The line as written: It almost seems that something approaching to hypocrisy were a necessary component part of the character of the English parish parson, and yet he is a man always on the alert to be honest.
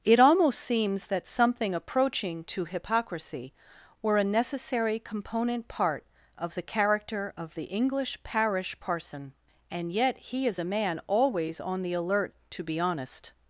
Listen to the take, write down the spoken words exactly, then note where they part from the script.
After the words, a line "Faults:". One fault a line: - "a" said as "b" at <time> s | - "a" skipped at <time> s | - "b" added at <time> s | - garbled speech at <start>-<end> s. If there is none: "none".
It almost seems that something approaching to hypocrisy were a necessary component part of the character of the English parish parson, and yet he is a man always on the alert to be honest.
Faults:
none